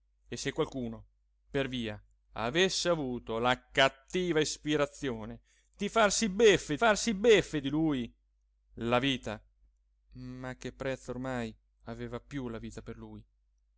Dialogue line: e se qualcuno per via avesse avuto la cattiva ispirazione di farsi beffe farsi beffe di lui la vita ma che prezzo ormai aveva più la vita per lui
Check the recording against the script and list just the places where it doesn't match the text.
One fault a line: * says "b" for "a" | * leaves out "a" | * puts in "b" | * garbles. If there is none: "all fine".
all fine